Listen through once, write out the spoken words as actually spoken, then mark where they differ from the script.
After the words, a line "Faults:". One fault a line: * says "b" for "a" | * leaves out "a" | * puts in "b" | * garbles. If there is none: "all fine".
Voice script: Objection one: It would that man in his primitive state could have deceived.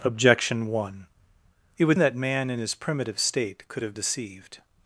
Objection one: It would that man in his primitive state could have deceived.
Faults:
all fine